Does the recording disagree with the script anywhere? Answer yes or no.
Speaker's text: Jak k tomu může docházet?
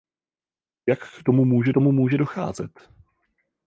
yes